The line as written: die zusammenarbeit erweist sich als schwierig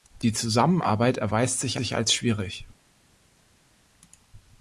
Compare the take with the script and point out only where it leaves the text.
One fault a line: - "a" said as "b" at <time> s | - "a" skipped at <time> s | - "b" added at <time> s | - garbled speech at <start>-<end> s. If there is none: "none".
- "sich" added at 1.7 s